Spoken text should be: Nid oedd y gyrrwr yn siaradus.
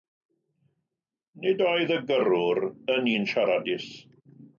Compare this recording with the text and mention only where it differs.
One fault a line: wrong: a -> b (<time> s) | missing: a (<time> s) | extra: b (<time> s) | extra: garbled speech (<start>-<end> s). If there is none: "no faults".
extra: un (3.1 s)